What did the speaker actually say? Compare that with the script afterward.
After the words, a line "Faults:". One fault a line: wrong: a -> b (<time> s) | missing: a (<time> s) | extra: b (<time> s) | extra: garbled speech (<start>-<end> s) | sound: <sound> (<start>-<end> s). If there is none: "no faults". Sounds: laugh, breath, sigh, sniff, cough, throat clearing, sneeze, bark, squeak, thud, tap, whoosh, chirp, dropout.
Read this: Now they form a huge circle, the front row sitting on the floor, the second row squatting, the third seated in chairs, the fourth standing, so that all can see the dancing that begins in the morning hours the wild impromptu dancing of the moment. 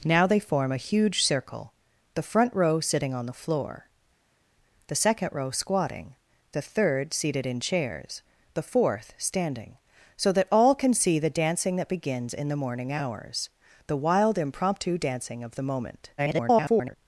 Now they form a huge circle, the front row sitting on the floor, the second row squatting, the third seated in chairs, the fourth standing, so that all can see the dancing that begins in the morning hours the wild impromptu dancing of the moment. [garbled]
Faults:
extra: garbled speech (16.2-17.0 s)